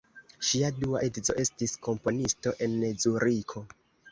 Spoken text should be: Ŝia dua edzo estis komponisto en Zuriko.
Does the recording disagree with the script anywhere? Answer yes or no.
no